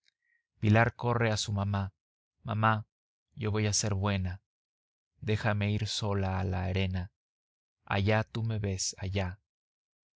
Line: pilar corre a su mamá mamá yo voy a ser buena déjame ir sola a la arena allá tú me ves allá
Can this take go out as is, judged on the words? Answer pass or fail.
pass